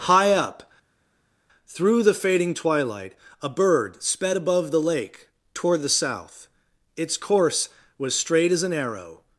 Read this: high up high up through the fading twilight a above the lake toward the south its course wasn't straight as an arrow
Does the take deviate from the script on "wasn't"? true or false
true